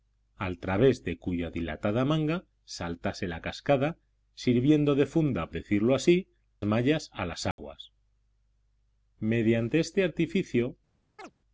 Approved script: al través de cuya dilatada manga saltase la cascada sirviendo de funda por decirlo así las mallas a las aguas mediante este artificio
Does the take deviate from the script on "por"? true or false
true